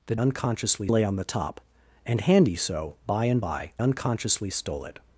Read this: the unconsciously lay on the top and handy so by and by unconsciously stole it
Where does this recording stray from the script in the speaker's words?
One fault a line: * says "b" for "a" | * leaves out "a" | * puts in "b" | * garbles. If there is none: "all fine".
all fine